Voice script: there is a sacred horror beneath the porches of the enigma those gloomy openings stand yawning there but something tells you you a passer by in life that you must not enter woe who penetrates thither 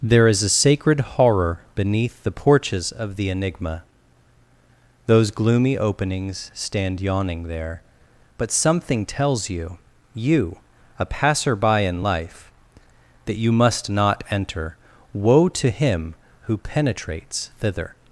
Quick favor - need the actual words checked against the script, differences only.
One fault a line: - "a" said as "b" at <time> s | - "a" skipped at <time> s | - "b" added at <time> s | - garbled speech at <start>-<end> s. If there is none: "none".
- "to him" added at 15.5 s